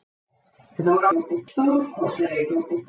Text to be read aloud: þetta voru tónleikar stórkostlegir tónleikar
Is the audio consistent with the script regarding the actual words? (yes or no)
yes